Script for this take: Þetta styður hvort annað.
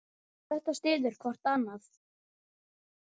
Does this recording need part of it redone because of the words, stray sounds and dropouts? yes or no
no